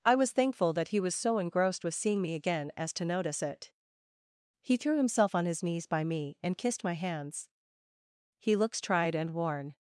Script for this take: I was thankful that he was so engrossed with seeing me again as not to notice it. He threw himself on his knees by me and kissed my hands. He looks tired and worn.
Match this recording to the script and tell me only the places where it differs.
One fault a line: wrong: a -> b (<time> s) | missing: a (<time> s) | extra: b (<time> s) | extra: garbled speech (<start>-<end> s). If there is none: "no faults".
missing: not (2.9 s)
wrong: tired -> tried (8.8 s)